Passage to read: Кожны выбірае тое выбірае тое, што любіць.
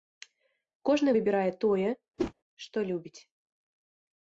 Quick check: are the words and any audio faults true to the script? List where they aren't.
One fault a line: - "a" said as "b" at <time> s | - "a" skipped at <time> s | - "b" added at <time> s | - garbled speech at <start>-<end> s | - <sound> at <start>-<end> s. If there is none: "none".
- "выбірае тое" skipped at 1.9 s
- whoosh at 2.2-2.3 s